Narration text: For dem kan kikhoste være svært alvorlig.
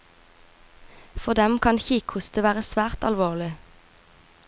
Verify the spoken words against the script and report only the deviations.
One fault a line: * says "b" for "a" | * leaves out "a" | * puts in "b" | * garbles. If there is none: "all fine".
all fine